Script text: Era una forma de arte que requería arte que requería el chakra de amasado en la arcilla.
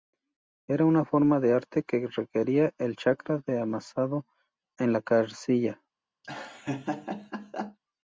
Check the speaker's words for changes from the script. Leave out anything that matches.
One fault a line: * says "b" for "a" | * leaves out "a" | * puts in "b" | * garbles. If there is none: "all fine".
* leaves out "arte que requería"